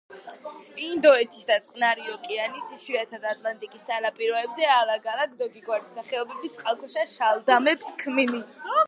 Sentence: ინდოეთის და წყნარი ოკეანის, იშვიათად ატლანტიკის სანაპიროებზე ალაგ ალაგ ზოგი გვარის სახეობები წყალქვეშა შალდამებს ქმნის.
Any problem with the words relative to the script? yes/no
no